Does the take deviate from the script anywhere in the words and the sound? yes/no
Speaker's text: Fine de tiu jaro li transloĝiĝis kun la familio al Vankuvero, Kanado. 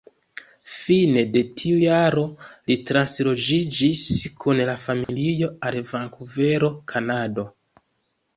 yes